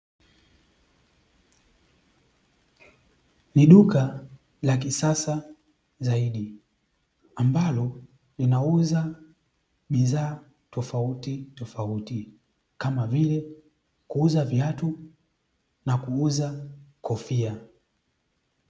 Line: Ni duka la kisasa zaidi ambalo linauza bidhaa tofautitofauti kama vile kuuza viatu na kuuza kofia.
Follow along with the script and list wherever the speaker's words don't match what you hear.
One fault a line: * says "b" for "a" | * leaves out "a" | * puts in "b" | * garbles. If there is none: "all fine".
all fine